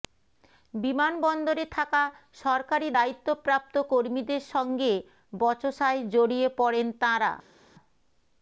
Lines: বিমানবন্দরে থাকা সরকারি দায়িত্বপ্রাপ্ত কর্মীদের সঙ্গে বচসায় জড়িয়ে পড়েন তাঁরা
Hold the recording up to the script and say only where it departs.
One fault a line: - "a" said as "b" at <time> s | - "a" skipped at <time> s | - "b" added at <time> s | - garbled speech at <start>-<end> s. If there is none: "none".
none